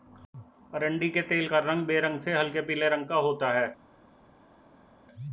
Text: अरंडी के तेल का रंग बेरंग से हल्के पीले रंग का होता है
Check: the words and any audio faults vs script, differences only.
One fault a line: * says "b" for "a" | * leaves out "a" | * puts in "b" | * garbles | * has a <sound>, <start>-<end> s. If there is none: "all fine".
all fine